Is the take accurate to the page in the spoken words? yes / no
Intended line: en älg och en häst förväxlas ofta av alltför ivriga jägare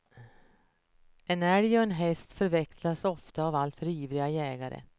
yes